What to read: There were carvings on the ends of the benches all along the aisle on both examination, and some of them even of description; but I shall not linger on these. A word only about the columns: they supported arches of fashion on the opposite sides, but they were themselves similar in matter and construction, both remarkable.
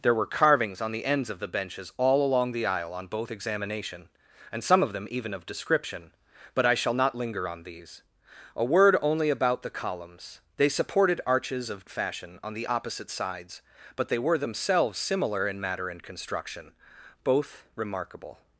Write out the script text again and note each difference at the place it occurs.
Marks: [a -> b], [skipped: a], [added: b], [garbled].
There were carvings on the ends of the benches all along the aisle on both examination, and some of them even of description; but I shall not linger on these. A word only about the columns: they supported arches of fashion on the opposite sides, but they were themselves similar in matter and construction, both remarkable.